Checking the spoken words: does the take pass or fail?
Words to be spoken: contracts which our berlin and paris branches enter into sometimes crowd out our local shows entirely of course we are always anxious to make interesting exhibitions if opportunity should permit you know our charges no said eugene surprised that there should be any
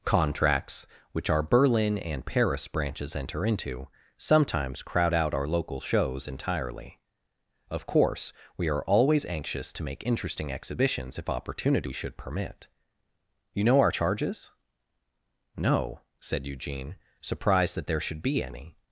pass